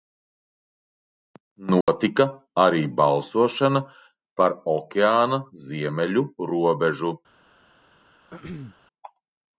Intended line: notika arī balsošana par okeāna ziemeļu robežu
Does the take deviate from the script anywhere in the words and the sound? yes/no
yes